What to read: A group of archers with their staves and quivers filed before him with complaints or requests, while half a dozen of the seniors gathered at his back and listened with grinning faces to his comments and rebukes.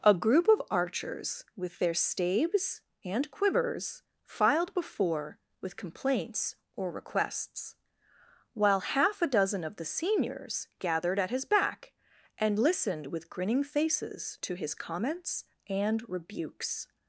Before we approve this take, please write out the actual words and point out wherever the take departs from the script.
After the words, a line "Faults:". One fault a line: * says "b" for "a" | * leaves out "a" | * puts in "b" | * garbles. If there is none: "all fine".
A group of archers with their staves and quivers filed before with complaints or requests, while half a dozen of the seniors gathered at his back and listened with grinning faces to his comments and rebukes.
Faults:
* leaves out "him"